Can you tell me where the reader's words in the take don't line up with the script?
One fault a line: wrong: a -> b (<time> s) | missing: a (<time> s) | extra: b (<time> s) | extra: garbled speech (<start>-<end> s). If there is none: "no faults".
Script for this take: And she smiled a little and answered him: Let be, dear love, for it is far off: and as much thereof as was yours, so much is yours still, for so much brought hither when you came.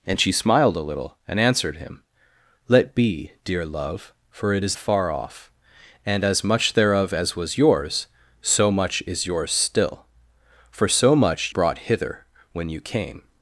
no faults